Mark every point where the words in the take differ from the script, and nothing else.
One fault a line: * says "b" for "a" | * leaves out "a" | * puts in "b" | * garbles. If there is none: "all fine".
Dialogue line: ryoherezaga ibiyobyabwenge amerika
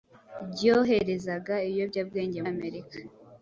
all fine